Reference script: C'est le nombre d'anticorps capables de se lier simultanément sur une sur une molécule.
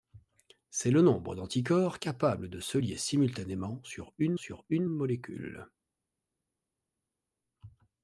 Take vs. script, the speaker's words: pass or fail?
pass